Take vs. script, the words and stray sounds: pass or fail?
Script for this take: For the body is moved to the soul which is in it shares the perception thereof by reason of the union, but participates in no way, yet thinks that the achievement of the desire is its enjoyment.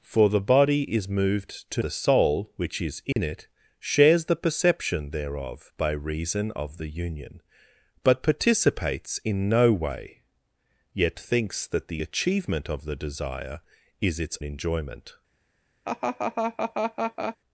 fail